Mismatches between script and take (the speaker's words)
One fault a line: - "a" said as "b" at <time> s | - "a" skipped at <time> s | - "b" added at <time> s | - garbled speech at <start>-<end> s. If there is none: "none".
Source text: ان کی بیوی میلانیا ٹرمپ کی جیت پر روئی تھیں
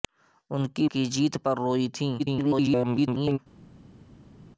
- "بیوی میلانیا ٹرمپ" skipped at 0.8 s
- garbled speech at 2.2-3.4 s